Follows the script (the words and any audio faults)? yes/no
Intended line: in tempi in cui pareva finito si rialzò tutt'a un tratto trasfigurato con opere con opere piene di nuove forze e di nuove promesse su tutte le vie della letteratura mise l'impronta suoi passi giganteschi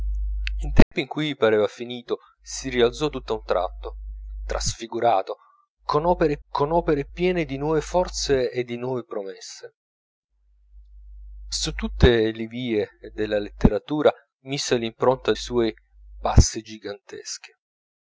no